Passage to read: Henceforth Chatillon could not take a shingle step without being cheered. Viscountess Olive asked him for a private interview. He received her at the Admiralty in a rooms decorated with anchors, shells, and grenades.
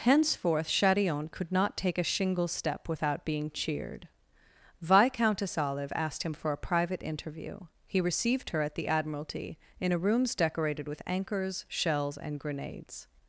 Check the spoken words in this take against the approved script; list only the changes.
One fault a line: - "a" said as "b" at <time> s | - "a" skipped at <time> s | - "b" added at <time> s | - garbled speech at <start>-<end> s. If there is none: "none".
none